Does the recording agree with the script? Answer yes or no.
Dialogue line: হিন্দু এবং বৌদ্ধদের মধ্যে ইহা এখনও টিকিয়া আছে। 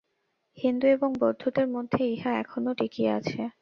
yes